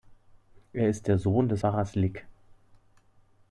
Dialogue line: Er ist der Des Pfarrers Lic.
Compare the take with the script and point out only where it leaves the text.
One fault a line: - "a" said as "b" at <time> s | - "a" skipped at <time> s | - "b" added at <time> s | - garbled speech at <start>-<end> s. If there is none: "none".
- "Sohn" added at 1.2 s